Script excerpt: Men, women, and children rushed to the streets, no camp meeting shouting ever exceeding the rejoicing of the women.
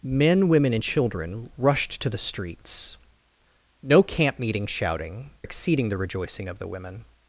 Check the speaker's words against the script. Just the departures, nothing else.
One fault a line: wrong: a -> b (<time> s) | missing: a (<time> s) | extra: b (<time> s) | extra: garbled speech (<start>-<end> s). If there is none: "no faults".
missing: ever (5.3 s)